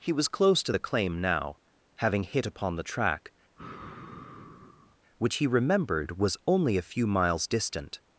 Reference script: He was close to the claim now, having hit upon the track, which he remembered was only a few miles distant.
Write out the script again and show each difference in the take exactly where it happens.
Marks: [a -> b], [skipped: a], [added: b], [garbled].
He was close to the claim now, having hit upon the track, which he remembered was only a few miles distant.